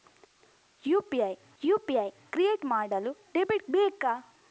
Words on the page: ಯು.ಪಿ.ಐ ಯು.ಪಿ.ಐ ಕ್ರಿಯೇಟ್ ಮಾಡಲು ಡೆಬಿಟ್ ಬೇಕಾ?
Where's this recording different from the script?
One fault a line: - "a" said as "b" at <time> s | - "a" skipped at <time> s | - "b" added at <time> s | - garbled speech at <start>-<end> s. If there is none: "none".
none